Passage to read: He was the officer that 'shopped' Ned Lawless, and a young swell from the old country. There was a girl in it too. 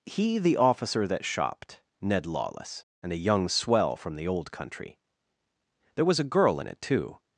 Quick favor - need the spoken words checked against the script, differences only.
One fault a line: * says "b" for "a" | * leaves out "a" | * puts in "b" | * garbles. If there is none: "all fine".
* leaves out "was"